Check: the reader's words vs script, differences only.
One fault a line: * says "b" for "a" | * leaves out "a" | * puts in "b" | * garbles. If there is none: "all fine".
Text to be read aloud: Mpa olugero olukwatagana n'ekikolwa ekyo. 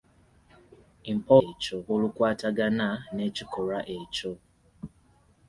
* says "ekyo" for "olugero"